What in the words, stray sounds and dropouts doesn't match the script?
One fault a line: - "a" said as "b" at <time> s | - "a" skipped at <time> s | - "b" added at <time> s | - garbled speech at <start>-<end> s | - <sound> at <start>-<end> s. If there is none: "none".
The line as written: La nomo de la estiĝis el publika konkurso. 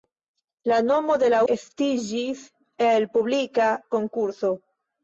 none